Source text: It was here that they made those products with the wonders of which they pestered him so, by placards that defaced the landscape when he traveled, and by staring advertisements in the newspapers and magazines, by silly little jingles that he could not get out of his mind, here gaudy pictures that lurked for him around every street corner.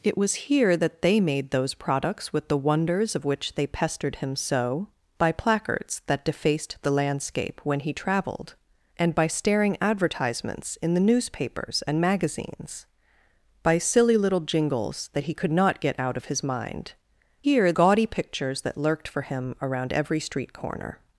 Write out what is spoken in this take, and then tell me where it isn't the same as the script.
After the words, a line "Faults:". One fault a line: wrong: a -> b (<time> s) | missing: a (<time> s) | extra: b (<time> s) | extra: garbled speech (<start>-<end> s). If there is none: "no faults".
It was here that they made those products with the wonders of which they pestered him so, by placards that defaced the landscape when he traveled, and by staring advertisements in the newspapers and magazines, by silly little jingles that he could not get out of his mind, here gaudy pictures that lurked for him around every street corner.
Faults:
no faults